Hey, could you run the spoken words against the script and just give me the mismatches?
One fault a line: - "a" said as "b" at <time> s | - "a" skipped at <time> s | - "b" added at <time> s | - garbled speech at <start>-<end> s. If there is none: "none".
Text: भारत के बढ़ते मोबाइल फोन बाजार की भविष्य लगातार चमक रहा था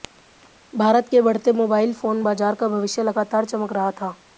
- "की" said as "का" at 2.5 s